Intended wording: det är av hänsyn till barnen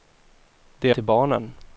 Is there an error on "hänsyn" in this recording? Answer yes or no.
yes